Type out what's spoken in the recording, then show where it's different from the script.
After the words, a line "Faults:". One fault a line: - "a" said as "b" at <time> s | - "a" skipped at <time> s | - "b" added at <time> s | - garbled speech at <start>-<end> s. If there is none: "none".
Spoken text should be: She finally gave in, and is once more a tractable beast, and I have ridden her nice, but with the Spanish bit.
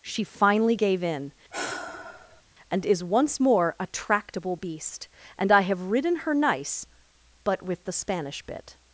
She finally gave in, and is once more a tractable beast, and I have ridden her nice, but with the Spanish bit.
Faults:
none